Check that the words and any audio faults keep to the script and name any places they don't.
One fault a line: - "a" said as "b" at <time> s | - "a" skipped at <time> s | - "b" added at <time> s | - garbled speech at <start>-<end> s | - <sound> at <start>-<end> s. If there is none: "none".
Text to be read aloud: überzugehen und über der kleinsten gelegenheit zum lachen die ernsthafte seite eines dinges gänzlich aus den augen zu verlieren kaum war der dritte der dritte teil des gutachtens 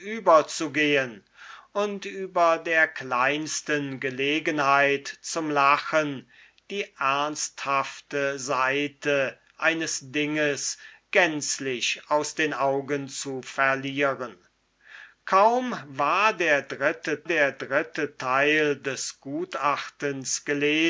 none